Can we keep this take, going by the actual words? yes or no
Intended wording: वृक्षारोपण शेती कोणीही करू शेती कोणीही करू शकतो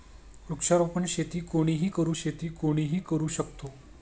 yes